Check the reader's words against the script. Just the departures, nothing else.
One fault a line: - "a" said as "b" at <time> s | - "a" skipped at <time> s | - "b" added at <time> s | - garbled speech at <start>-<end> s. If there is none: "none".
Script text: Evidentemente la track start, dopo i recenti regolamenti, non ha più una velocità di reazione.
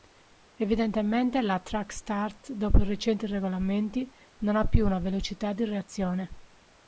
none